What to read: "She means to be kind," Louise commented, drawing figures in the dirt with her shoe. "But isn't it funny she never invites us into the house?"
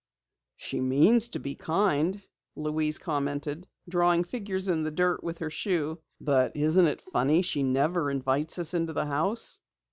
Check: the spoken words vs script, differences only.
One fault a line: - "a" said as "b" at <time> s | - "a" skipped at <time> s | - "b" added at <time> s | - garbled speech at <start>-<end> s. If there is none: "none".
none